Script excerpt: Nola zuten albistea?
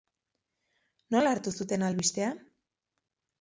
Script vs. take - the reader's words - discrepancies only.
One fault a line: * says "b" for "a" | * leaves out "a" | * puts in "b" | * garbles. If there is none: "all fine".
* puts in "hartu"